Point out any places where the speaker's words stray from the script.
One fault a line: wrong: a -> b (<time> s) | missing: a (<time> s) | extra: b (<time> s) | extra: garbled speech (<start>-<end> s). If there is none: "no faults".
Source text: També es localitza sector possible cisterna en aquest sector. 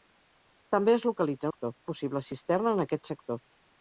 no faults